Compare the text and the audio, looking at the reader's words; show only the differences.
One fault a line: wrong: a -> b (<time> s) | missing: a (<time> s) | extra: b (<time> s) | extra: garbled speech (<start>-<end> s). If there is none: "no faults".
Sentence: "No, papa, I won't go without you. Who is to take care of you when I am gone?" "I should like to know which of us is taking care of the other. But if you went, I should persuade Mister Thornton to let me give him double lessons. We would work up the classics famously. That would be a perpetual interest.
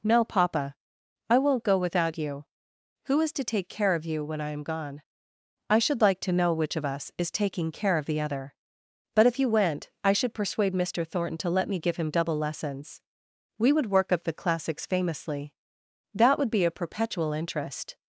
no faults